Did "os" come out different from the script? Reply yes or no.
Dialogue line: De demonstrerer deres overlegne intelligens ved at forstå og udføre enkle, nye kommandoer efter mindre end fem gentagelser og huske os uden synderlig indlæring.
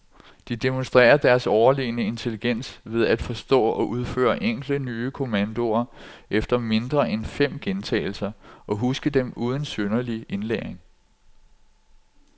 yes